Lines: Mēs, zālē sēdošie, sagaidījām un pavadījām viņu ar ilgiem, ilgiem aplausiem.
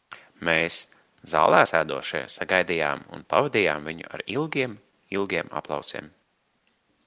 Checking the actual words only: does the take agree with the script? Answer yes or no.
yes